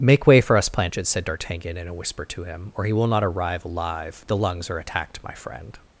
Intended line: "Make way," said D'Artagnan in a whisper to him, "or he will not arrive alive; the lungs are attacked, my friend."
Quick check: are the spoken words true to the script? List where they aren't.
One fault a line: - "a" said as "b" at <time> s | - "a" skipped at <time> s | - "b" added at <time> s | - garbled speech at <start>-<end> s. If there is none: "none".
- "for us Planchet" added at 0.4 s